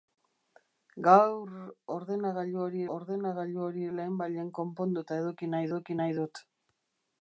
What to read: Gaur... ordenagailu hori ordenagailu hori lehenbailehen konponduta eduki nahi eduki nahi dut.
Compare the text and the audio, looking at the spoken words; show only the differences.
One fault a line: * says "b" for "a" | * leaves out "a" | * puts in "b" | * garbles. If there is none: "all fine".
all fine